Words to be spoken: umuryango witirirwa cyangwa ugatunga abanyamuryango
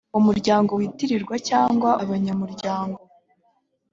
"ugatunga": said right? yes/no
no